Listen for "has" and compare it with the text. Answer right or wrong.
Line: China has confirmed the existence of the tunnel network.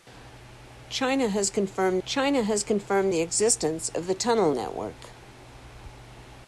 right